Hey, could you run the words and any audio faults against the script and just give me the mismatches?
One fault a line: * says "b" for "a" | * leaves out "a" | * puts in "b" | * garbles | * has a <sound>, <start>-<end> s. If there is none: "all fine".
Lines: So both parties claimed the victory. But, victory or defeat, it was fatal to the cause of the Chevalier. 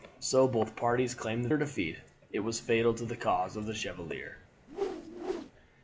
* leaves out "victory But victory"
* has a whoosh, 4.7-5.5 s